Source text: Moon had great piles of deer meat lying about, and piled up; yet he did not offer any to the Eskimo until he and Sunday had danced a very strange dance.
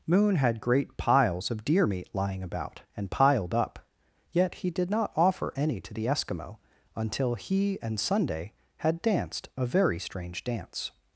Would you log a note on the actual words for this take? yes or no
no